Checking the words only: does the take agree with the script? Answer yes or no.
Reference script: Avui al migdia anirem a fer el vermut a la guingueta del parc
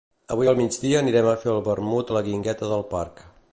yes